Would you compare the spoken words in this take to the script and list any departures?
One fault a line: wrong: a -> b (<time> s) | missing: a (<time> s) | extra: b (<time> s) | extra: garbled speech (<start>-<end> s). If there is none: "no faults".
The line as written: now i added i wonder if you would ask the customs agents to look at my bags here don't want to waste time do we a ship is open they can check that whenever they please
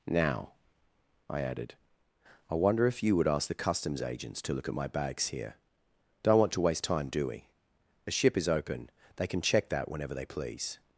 no faults